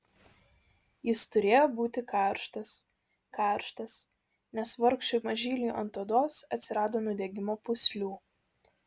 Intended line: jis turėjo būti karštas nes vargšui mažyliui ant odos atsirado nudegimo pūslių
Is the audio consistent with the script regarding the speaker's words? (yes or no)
no